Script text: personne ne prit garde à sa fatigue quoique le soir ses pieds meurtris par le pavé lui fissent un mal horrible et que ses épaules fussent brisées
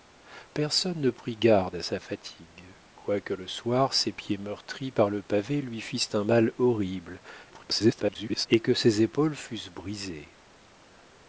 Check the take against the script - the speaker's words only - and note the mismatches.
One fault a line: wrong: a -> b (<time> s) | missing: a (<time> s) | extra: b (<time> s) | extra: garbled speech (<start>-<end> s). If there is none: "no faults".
extra: garbled speech (7.5-8.5 s)